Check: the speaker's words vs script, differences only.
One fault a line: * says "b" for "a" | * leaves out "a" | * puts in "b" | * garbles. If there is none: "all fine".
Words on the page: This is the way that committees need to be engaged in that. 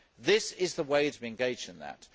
* leaves out "that committees need"